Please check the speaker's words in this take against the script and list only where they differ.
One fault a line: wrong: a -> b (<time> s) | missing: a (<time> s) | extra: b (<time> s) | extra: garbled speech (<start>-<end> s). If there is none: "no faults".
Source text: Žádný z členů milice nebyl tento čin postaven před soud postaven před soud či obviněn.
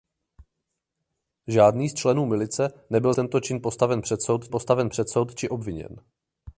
no faults